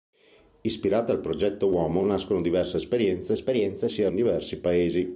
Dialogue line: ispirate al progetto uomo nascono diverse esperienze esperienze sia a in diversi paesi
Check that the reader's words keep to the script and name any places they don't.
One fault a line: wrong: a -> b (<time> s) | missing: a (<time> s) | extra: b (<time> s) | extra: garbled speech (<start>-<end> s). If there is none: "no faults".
no faults